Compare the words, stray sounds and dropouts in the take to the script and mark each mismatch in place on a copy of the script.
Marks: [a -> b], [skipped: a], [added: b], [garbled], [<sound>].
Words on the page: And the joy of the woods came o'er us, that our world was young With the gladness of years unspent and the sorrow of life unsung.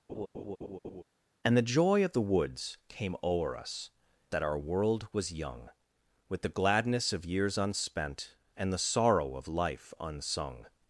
[laugh] And the joy of the woods came o'er us, that our world was young With the gladness of years unspent and the sorrow of life unsung.